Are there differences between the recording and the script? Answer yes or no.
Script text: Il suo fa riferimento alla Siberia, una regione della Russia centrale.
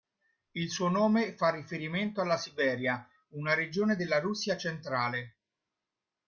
yes